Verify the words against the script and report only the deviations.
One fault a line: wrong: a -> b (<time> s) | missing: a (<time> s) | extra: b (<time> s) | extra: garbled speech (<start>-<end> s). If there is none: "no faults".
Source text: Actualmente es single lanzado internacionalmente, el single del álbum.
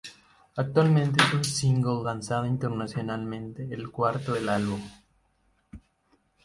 extra: un (1.3 s)
wrong: single -> cuarto (3.9 s)